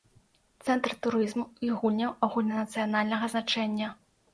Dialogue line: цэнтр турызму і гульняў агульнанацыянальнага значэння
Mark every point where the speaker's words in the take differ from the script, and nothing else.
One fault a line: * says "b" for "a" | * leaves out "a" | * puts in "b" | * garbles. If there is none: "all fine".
all fine